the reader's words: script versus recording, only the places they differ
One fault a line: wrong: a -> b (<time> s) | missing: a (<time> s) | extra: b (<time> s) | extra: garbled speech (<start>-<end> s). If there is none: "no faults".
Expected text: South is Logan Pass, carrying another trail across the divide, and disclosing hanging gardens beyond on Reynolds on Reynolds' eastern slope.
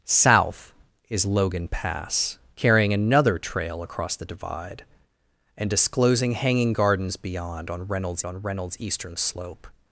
no faults